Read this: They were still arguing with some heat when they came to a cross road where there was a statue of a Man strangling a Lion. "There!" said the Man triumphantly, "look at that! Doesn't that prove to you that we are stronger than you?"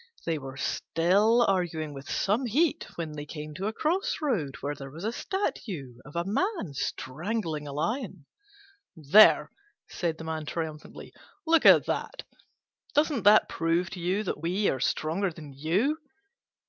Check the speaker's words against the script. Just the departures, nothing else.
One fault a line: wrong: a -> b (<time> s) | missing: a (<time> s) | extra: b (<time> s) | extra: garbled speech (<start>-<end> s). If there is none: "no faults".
no faults